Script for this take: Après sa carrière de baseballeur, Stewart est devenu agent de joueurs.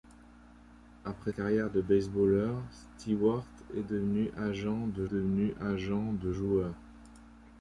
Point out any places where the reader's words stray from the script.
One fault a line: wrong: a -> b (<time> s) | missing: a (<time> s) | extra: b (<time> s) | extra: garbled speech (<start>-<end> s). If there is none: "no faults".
missing: sa (1.3 s)
extra: devenu agent de (5.0 s)